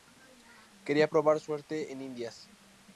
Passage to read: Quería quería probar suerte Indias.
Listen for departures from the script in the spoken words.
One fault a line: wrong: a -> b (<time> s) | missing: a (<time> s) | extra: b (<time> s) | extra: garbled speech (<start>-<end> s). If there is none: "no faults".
missing: quería (1.1 s)
extra: en (1.9 s)